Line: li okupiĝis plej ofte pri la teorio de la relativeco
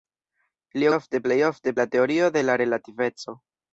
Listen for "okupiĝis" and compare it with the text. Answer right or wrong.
wrong